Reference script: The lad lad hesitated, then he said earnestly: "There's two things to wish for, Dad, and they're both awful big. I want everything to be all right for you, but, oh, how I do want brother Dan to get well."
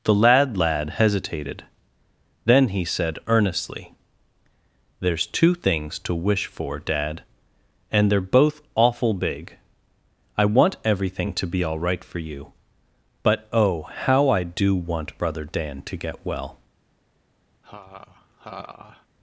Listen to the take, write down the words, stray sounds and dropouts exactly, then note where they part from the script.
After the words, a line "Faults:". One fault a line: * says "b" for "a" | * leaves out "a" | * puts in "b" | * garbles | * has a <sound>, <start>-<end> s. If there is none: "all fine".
The lad lad hesitated, then he said earnestly: "There's two things to wish for, Dad, and they're both awful big. I want everything to be all right for you, but, oh, how I do want brother Dan to get well."
Faults:
* has a laugh, 17.6-19.1 s